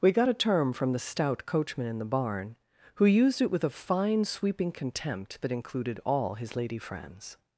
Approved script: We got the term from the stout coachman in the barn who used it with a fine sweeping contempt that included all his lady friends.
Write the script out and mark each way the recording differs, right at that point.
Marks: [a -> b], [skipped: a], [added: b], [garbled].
We got [the -> a] term from the stout coachman in the barn who used it with a fine sweeping contempt that included all his lady friends.